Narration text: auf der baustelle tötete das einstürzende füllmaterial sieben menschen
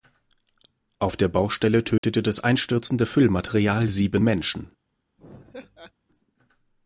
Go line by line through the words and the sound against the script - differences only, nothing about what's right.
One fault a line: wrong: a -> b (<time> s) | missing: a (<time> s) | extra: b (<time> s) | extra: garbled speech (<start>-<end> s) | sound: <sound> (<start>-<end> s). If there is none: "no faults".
sound: dropout (2.0-2.0 s)
sound: laugh (5.2-5.9 s)